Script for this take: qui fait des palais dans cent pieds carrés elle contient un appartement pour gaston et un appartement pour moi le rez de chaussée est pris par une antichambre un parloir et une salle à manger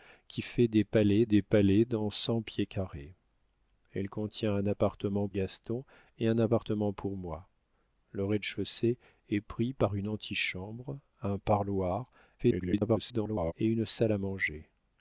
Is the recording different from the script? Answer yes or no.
yes